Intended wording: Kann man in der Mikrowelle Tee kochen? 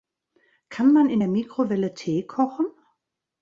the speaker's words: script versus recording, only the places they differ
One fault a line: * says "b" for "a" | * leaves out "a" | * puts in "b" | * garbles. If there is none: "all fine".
all fine